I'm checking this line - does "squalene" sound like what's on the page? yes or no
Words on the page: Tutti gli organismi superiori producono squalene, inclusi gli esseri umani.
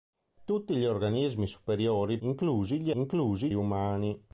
no